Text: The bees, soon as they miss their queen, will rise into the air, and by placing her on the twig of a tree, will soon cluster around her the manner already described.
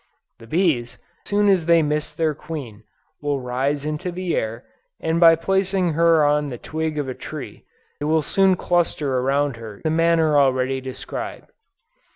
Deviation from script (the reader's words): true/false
false